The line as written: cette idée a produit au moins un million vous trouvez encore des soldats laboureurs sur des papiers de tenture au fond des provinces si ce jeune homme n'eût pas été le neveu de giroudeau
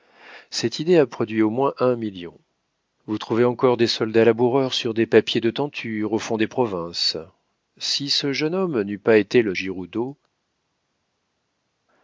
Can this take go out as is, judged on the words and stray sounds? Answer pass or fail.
fail